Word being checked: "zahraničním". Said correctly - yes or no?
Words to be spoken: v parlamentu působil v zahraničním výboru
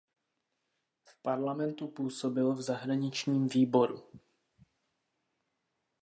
yes